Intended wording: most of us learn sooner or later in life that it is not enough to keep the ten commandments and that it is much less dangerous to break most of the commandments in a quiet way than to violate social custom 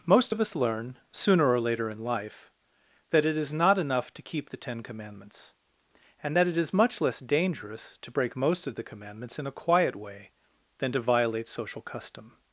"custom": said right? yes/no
yes